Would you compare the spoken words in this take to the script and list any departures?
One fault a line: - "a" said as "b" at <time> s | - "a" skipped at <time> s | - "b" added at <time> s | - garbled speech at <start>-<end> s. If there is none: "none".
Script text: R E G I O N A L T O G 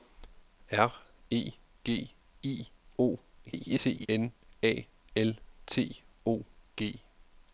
- garbled speech at 3.5-4.1 s